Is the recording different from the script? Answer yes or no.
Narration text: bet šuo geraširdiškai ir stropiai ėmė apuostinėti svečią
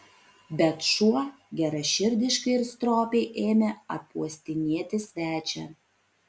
no